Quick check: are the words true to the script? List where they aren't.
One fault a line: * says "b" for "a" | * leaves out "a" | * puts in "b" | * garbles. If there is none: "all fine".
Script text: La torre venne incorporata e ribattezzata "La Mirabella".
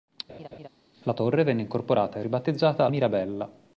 * leaves out "La"